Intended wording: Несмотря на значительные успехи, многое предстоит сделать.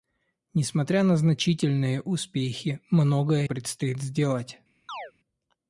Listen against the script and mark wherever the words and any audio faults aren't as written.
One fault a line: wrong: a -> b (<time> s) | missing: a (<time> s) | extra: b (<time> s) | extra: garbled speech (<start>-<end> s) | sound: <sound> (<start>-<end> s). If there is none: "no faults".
sound: chirp (4.9-5.1 s)